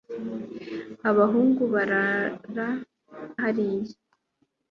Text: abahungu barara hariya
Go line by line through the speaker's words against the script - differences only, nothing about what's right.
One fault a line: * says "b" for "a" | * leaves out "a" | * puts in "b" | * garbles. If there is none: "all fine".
all fine